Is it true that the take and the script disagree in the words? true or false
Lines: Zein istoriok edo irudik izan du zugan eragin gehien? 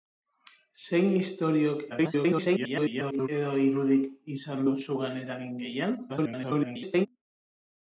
true